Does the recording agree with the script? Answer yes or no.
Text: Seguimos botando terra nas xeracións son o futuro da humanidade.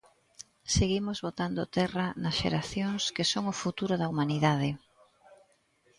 no